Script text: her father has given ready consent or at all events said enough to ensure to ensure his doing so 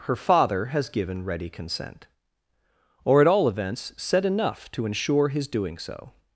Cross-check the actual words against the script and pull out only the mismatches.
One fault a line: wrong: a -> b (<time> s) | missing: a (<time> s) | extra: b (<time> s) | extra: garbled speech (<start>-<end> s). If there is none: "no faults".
missing: to ensure (5.3 s)